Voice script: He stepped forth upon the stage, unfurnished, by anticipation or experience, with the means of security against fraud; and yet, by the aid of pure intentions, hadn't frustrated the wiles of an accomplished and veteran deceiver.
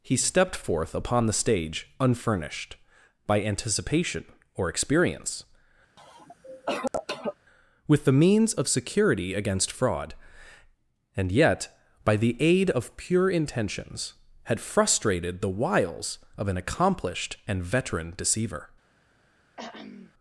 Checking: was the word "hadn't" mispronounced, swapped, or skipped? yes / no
yes